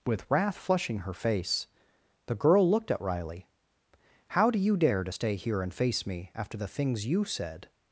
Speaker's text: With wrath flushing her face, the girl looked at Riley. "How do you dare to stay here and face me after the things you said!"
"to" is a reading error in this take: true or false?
false